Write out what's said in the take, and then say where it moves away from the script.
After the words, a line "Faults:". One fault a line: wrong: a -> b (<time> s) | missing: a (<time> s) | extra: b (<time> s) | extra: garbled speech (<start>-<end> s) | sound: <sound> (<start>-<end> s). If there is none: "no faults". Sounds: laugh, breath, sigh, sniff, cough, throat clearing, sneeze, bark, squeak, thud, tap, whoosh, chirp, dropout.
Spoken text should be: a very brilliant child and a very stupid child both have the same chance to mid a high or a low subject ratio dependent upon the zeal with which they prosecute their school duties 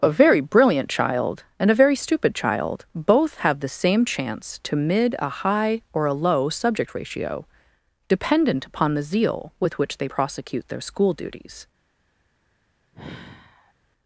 a very brilliant child and a very stupid child both have the same chance to mid a high or a low subject ratio dependent upon the zeal with which they prosecute their school duties
Faults:
sound: sigh (12.9-13.7 s)